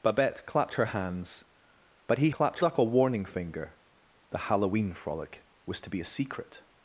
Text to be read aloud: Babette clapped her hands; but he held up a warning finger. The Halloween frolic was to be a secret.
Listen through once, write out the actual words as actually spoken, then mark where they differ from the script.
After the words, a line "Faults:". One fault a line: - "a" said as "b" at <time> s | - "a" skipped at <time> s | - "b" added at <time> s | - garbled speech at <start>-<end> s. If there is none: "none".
Babette clapped her hands; but he clapped up a warning finger. The Halloween frolic was to be a secret.
Faults:
- "held" said as "clapped" at 2.3 s